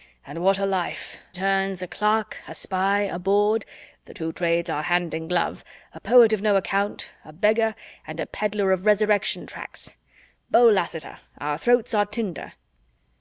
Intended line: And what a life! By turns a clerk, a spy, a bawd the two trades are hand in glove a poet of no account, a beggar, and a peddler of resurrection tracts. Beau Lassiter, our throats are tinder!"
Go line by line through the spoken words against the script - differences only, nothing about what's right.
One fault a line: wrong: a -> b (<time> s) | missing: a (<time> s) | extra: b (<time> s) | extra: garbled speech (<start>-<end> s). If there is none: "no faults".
missing: By (1.2 s)